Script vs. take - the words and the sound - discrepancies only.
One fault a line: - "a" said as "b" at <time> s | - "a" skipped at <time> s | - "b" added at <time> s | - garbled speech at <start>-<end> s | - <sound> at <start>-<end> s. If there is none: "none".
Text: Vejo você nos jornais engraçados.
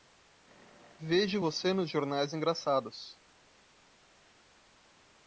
none